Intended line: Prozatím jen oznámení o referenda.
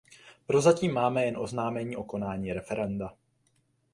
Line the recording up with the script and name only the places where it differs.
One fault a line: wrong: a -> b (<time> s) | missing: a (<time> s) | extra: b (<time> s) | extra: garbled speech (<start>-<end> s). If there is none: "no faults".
extra: máme (0.9 s)
extra: konání (2.0 s)